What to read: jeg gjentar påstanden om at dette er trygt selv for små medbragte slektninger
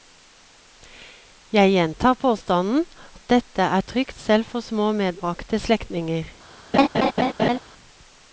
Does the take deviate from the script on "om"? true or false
true